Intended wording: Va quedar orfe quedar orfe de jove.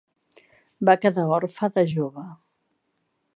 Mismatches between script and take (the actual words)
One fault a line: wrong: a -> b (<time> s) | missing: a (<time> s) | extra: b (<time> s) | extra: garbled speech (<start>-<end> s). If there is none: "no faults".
missing: quedar orfe (1.7 s)